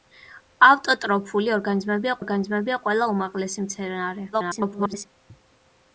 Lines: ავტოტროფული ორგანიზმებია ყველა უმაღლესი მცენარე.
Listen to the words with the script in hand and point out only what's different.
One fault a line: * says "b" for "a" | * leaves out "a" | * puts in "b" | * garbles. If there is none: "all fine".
* puts in "ორგანიზმებია"
* garbles